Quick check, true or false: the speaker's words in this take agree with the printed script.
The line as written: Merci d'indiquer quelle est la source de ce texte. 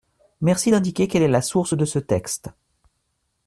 true